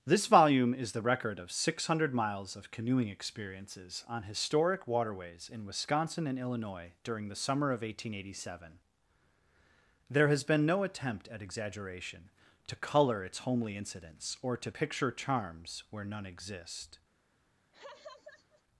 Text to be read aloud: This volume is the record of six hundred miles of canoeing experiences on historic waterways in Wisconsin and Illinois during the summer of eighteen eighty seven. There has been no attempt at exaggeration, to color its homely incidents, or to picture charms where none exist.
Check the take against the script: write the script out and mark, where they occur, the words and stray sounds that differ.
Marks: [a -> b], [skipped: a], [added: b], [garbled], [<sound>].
This volume is the record of six hundred miles of canoeing experiences on historic waterways in Wisconsin and Illinois during the summer of eighteen eighty seven. There has been no attempt at exaggeration, to color its homely incidents, or to picture charms where none exist. [laugh]